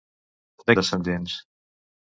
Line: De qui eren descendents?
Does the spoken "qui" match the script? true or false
false